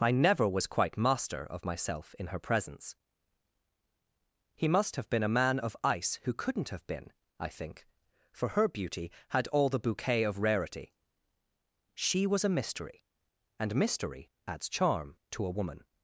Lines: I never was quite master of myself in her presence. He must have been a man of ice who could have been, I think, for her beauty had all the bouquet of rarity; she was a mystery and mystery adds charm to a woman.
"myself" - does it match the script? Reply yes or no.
yes